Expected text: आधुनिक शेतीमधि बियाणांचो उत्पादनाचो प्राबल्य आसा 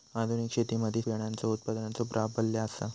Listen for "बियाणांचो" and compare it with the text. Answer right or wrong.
right